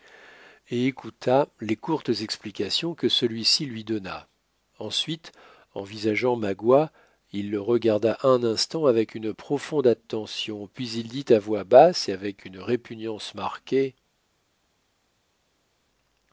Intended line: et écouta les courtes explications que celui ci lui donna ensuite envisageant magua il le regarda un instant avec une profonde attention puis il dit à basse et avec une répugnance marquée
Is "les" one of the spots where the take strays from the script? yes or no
no